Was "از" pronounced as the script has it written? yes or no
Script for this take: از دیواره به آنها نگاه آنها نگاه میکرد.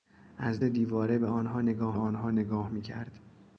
yes